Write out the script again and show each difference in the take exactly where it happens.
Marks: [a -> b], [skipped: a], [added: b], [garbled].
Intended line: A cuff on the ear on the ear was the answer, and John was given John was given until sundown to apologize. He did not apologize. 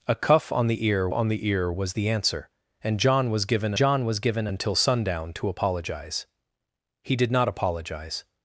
A cuff on the ear on the ear was the answer, and John was given John was given until sundown to apologize. He did not apologize.